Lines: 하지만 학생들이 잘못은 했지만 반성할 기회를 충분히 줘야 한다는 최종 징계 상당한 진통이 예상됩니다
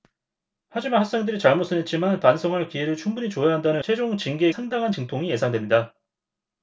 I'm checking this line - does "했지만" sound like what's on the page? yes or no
yes